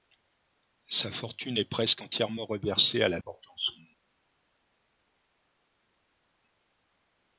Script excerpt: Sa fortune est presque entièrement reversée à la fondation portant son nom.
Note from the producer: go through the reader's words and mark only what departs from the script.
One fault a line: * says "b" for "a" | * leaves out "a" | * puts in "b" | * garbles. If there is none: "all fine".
* leaves out "fondation"